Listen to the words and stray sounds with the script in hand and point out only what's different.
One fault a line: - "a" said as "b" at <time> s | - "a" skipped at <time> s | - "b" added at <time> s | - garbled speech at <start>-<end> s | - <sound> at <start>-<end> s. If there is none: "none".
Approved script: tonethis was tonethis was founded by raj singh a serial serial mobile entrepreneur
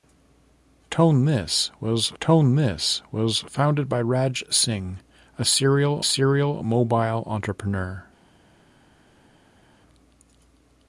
none